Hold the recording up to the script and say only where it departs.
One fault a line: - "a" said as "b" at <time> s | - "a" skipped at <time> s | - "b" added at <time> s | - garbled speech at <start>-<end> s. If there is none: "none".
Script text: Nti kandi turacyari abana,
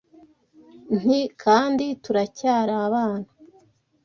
none